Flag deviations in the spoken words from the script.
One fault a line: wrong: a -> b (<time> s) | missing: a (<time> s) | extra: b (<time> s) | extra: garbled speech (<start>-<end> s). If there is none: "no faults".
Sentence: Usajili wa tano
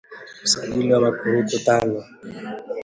extra: makurutu (1.0 s)